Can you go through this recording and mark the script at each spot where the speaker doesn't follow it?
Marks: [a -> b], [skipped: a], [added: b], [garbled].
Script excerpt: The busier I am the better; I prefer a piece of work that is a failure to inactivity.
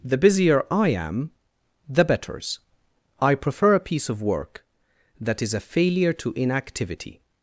The busier I am the [better; -> betters] I prefer a piece of work that is a failure to inactivity.